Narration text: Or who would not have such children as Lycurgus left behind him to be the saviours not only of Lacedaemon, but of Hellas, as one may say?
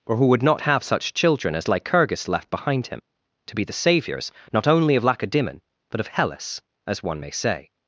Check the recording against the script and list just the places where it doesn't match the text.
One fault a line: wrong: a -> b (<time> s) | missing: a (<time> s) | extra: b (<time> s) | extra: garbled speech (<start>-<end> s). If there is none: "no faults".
no faults